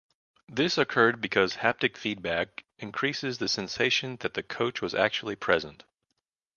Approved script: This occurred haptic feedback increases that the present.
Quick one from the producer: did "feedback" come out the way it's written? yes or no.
yes